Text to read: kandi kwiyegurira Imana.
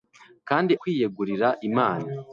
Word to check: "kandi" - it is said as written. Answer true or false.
true